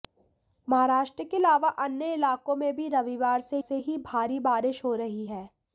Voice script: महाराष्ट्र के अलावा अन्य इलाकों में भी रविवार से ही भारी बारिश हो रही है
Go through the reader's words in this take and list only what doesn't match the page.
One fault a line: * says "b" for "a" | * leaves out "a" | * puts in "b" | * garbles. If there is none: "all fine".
* puts in "से"